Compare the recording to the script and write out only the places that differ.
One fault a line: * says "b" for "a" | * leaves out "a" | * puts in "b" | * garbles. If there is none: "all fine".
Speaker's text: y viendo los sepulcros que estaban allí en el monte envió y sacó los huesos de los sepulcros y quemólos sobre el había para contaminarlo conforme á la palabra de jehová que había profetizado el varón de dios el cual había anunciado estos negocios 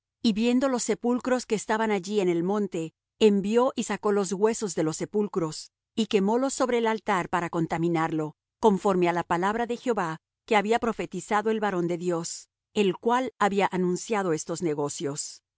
* says "altar" for "había"